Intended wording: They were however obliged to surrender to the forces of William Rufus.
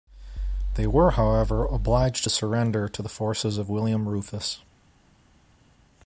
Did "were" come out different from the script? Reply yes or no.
no